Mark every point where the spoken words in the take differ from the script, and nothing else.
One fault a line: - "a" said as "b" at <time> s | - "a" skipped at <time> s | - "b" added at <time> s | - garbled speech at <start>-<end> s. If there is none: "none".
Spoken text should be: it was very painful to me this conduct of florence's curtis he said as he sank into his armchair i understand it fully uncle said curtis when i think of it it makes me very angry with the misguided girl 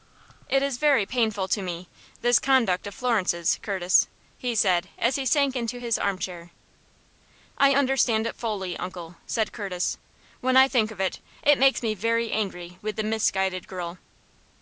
- "was" said as "is" at 0.6 s